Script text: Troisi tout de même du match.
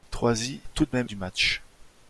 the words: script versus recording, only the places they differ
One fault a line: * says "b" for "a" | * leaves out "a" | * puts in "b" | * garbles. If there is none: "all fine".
all fine